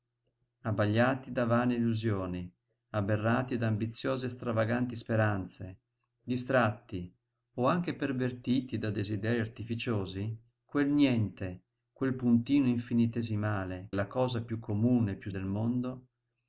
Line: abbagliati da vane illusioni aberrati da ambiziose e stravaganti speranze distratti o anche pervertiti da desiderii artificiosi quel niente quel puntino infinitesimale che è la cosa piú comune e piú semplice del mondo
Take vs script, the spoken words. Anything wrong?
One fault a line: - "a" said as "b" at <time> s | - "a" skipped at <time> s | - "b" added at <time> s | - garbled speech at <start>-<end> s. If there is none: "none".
- "che" skipped at 13.9 s
- "semplice" skipped at 15.3 s